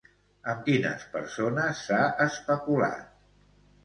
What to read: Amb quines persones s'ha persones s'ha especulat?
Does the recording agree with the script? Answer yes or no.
no